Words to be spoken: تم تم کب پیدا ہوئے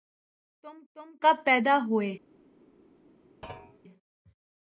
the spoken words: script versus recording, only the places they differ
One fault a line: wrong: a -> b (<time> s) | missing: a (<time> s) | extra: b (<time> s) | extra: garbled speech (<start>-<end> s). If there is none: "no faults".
no faults